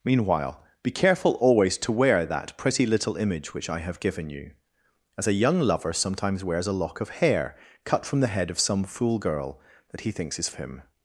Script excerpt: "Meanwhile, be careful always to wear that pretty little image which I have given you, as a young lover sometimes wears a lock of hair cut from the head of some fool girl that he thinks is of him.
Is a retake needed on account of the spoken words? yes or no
no